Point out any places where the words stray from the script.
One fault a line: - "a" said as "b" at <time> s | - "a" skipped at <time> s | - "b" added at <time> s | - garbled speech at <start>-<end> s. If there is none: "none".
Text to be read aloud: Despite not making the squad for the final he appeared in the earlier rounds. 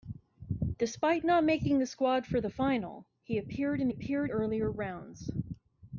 - "the" said as "appeared" at 3.9 s